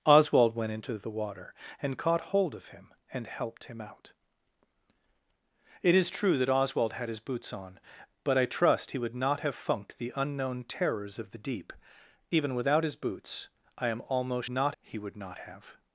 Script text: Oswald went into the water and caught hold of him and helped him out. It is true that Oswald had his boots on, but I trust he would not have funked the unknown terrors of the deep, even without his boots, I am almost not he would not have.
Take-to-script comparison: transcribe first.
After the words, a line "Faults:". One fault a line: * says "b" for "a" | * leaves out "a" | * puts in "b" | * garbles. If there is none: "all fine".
Oswald went into the water and caught hold of him and helped him out. It is true that Oswald had his boots on, but I trust he would not have funked the unknown terrors of the deep, even without his boots, I am almost not he would not have.
Faults:
all fine